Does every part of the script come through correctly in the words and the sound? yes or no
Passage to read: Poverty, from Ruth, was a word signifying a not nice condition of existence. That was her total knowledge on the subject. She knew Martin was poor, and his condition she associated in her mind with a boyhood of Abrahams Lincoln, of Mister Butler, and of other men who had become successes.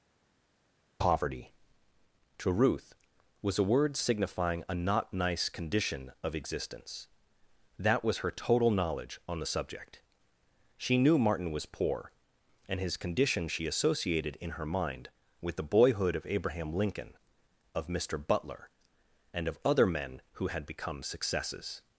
no